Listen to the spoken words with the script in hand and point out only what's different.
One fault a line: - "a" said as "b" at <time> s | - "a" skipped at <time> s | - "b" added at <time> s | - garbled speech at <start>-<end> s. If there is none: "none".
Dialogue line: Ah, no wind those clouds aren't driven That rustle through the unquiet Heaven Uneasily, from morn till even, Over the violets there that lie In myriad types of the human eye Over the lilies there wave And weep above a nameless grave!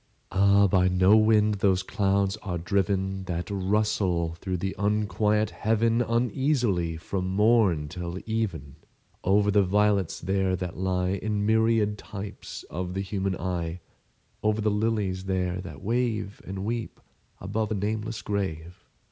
- "by" added at 0.7 s
- "aren't" said as "are" at 2.4 s
- "that" added at 15.6 s